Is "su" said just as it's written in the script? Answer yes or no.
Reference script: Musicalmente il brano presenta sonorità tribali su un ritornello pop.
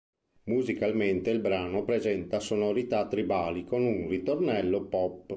no